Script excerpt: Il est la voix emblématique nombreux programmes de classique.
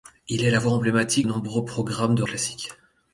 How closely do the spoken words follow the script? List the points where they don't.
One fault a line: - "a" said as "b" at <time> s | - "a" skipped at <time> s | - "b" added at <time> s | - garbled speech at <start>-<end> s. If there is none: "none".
none